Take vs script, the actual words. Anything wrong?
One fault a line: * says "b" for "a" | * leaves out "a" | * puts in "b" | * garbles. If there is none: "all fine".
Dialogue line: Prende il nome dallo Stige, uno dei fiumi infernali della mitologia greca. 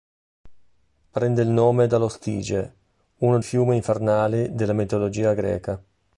* leaves out "dei"